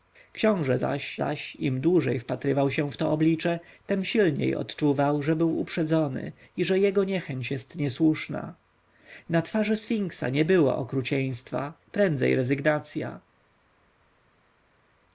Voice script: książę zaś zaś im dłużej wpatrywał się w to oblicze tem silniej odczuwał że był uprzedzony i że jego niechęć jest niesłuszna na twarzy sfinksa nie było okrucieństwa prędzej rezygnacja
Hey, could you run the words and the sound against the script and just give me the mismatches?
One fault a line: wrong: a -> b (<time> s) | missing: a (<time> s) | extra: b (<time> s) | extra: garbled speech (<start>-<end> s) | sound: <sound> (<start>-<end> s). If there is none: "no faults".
no faults